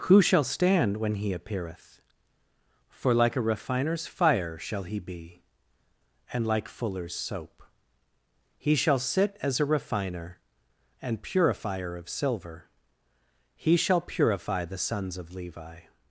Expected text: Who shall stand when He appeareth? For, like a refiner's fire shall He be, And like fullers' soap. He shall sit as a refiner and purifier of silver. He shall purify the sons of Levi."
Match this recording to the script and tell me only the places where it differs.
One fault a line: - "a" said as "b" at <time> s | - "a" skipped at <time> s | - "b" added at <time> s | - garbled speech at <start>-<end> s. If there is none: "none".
none